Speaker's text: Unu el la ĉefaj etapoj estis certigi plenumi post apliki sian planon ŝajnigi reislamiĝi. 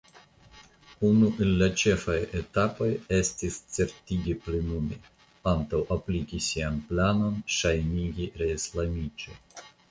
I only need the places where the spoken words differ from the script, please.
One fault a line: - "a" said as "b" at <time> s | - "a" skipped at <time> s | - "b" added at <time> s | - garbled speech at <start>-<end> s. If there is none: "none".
- "post" said as "antaŭ" at 5.5 s